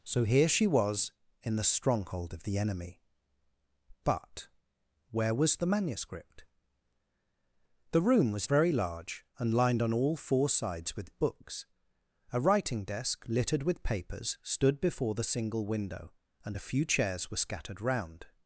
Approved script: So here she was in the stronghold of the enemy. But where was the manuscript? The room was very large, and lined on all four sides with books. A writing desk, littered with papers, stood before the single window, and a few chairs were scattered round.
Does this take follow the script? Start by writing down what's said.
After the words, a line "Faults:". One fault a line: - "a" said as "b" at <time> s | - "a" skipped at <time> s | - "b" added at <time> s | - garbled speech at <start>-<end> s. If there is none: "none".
So here she was in the stronghold of the enemy. But where was the manuscript? The room was very large, and lined on all four sides with books. A writing desk, littered with papers, stood before the single window, and a few chairs were scattered round.
Faults:
none